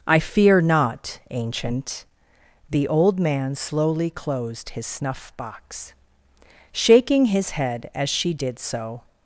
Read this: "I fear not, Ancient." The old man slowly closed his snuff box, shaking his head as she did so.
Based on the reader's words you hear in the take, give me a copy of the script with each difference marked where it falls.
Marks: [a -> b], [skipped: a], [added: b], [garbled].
"I fear not, Ancient." The old man slowly closed his snuff box, shaking his head as she did so.